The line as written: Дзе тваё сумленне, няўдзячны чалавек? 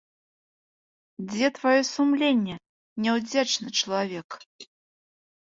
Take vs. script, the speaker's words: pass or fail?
pass